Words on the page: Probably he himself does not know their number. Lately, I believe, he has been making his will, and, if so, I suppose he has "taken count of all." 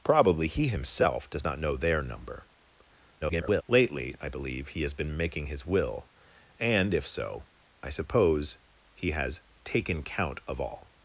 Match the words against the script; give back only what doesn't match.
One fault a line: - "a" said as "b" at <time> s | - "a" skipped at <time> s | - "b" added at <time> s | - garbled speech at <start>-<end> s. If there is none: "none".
- garbled speech at 3.2-3.6 s